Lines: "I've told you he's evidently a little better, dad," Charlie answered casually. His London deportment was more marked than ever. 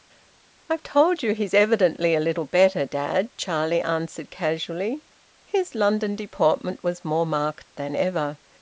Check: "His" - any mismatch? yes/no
no